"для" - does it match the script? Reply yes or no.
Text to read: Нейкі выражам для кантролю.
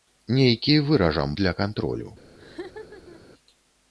yes